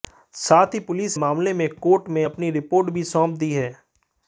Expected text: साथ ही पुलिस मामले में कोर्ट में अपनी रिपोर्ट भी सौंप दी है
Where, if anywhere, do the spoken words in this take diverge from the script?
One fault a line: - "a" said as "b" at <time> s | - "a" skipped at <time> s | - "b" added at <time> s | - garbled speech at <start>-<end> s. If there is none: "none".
none